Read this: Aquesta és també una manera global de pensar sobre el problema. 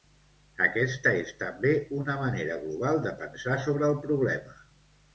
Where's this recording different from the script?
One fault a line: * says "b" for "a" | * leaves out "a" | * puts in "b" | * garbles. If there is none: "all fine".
all fine